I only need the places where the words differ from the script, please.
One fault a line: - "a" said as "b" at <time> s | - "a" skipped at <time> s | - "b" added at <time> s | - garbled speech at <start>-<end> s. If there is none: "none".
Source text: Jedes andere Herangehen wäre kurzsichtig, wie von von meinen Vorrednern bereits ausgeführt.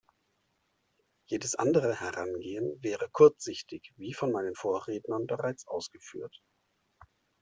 - "von" skipped at 4.3 s